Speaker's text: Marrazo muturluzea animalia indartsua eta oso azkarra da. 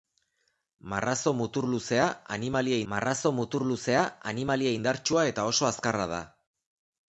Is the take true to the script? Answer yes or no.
no